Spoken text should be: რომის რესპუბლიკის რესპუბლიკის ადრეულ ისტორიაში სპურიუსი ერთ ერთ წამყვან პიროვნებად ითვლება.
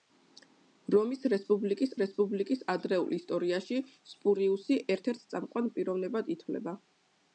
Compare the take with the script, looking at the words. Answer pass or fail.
pass